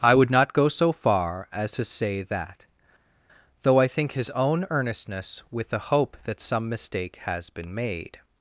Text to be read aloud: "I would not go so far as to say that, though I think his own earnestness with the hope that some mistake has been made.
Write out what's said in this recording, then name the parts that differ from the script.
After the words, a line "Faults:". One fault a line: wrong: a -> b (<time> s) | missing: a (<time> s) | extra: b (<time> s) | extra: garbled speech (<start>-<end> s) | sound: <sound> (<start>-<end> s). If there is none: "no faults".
"I would not go so far as to say that, though I think his own earnestness with the hope that some mistake has been made.
Faults:
no faults